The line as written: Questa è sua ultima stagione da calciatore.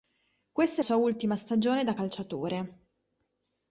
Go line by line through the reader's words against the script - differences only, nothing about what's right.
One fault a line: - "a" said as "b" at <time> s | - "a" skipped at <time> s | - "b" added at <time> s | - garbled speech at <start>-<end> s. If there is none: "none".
none